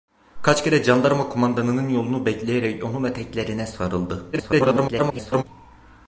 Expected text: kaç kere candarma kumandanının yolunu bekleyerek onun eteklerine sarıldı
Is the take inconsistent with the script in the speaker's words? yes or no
yes